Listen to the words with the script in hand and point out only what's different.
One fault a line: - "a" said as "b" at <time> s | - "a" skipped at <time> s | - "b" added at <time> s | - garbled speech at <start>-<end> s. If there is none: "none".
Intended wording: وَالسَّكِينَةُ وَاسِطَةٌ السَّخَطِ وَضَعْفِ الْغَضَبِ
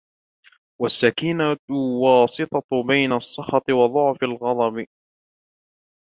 - "بَيْنَ" added at 2.9 s